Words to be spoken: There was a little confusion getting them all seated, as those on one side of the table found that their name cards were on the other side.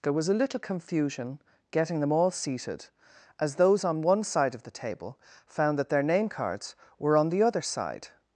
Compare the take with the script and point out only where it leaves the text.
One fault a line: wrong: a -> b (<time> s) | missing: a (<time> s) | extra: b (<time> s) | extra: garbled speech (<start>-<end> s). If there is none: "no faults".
no faults